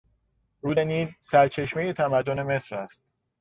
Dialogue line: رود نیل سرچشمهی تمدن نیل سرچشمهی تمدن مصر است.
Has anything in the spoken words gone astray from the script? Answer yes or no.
yes